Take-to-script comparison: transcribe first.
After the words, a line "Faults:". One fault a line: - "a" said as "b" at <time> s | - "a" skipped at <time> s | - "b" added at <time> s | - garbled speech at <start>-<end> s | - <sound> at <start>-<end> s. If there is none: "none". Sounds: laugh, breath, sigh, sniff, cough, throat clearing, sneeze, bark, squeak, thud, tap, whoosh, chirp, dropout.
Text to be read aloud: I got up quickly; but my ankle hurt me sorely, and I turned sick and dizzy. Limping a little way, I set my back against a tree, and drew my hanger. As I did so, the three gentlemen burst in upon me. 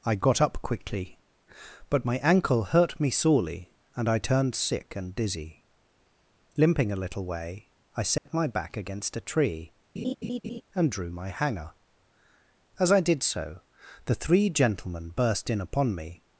I got up quickly; but my ankle hurt me sorely, and I turned sick and dizzy. Limping a little way, I set my back against a tree, and drew my hanger. As I did so, the three gentlemen burst in upon me.
Faults:
- dropout at 8.2-8.3 s
- laugh at 10.0-10.6 s